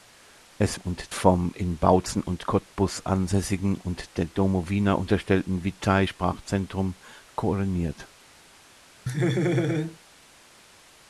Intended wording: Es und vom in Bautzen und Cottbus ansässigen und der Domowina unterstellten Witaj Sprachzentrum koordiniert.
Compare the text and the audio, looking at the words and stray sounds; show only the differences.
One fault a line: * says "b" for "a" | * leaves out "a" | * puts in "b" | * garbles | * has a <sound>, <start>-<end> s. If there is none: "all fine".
* has a laugh, 9.1-10.0 s